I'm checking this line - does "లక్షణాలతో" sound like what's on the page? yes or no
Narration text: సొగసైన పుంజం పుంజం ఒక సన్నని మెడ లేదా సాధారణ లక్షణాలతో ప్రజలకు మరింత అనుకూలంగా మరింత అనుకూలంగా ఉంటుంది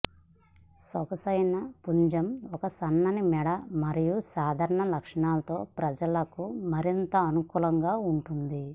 yes